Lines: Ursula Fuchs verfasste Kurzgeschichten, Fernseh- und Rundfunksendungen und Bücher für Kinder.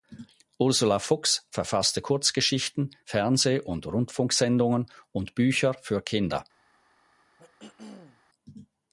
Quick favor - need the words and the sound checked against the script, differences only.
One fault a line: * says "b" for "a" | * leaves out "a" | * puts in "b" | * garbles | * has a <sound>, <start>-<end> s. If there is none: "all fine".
* has a throat clearing, 7.4-8.2 s